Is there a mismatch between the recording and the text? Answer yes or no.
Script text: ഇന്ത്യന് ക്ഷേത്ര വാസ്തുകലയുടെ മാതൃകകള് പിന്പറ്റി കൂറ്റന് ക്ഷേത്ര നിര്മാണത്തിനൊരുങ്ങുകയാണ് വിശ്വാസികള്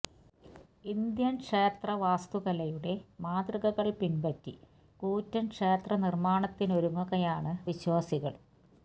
no